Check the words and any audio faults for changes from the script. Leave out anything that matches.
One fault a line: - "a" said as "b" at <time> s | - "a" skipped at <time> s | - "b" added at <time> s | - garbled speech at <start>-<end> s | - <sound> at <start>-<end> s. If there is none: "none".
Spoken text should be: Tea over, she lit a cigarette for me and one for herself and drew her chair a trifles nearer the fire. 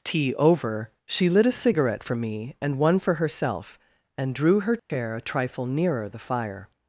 - dropout at 4.8-4.9 s
- "trifles" said as "trifle" at 5.2 s